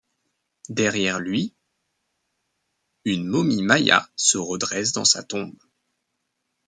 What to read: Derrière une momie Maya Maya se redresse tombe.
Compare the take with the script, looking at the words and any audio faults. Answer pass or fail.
fail